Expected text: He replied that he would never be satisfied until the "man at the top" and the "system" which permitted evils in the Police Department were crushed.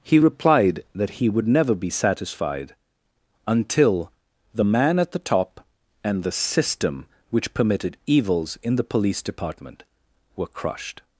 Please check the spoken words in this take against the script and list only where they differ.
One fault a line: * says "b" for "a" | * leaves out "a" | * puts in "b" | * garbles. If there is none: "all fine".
all fine